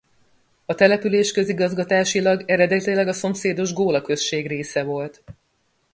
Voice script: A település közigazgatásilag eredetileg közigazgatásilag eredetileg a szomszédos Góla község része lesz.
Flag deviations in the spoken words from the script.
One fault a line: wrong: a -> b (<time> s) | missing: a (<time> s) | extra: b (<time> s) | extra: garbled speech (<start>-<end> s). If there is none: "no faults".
missing: közigazgatásilag eredetileg (3.1 s)
wrong: lesz -> volt (4.8 s)